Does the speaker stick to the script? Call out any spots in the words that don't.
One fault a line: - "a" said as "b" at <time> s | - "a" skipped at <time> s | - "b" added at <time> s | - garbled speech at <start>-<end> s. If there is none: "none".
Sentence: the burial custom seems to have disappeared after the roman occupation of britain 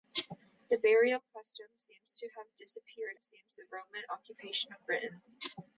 - "after" said as "seems" at 3.2 s